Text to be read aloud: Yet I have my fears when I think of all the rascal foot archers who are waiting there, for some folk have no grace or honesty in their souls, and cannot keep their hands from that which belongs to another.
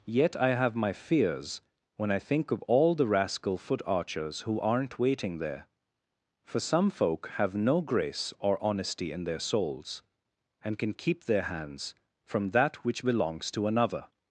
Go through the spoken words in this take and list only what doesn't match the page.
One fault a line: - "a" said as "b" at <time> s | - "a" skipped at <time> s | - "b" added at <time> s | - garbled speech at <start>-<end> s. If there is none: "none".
- "are" said as "aren't" at 4.6 s
- "cannot" said as "can" at 10.8 s